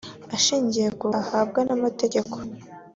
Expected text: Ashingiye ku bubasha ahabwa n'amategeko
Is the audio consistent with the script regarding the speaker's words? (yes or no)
no